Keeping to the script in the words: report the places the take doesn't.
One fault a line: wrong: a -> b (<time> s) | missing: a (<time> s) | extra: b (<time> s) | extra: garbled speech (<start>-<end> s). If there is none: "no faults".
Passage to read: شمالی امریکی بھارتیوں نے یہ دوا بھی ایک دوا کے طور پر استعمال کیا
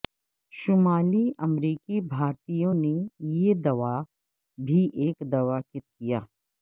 missing: طور پر استعمال (5.8 s)